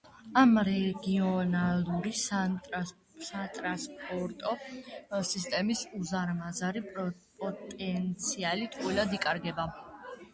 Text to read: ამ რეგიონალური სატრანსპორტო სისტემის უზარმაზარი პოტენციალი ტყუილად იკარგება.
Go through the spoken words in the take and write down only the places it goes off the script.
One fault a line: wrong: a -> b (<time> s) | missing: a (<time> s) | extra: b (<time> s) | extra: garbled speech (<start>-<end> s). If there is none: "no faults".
no faults